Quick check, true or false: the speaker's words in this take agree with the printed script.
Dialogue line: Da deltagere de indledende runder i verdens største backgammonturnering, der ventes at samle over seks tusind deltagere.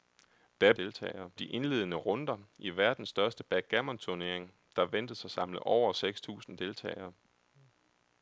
true